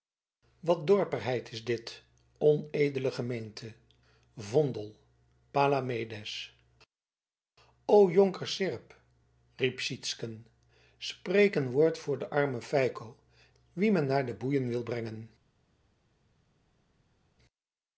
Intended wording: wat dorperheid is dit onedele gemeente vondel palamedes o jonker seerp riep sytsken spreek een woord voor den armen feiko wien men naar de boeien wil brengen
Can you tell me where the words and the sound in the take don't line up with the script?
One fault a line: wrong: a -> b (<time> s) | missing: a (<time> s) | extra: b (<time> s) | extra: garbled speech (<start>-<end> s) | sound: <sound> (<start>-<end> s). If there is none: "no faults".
no faults